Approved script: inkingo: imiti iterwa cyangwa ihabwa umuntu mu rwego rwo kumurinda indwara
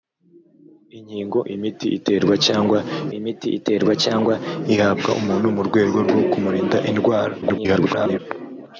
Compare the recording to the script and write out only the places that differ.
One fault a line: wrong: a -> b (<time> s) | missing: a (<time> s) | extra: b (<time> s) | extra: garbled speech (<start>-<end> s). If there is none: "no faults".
extra: imiti iterwa cyangwa (3.2 s)
extra: garbled speech (7.4-8.2 s)